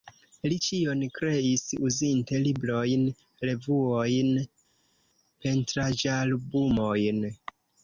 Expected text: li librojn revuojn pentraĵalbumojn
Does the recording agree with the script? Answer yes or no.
no